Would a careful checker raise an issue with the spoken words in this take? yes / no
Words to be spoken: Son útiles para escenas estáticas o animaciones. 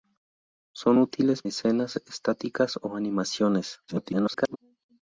yes